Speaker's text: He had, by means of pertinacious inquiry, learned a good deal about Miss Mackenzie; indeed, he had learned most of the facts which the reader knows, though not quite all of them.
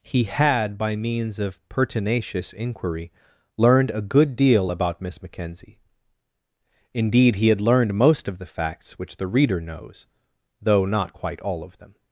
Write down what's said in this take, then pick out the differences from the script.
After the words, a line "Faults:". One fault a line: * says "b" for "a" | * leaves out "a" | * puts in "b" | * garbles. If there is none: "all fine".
He had, by means of pertinacious inquiry, learned a good deal about Miss Mackenzie; indeed, he had learned most of the facts which the reader knows, though not quite all of them.
Faults:
all fine